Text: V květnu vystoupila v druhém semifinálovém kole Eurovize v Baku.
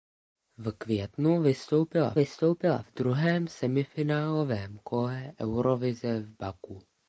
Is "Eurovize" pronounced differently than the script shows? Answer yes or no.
no